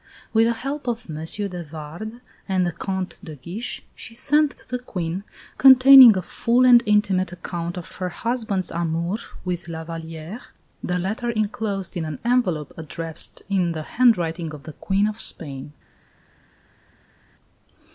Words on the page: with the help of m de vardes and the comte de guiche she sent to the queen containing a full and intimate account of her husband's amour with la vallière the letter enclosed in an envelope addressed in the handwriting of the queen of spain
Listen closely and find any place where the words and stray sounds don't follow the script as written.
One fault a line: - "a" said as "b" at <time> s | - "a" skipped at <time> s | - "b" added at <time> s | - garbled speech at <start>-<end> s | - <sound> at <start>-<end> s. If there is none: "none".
none